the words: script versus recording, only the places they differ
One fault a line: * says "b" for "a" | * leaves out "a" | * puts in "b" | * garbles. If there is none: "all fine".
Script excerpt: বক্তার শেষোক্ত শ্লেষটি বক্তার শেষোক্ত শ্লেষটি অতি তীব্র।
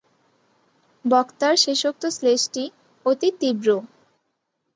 * leaves out "বক্তার শেষোক্ত শ্লেষটি"